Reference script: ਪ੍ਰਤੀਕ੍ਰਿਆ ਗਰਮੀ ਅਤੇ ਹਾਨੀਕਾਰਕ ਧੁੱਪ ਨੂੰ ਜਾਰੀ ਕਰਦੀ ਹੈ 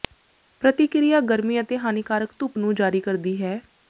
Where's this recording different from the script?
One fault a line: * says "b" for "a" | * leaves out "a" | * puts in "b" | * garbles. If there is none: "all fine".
all fine